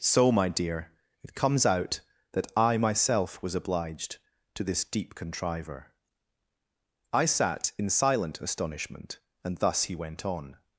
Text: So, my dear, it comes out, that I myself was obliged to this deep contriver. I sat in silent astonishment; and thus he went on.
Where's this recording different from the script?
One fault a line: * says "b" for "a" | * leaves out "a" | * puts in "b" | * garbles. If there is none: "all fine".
all fine